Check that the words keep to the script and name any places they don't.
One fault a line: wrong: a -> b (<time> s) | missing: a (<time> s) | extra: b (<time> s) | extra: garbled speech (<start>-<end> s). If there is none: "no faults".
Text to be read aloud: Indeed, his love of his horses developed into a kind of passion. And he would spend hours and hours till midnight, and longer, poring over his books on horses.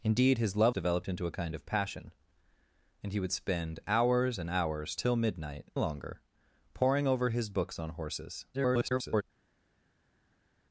missing: of his horses (0.8 s)
missing: and (5.7 s)
extra: garbled speech (8.5-9.2 s)